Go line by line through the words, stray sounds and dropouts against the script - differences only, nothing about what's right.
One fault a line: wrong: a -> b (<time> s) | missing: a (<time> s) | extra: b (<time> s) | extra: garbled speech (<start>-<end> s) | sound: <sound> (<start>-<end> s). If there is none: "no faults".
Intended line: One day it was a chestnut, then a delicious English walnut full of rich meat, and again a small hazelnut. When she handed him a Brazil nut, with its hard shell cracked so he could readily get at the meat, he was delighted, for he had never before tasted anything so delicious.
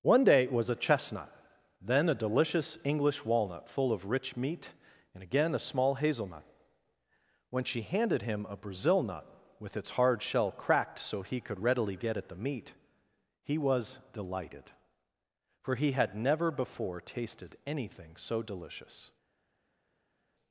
no faults